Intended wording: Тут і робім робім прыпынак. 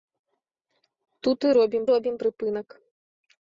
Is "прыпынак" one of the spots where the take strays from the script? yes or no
no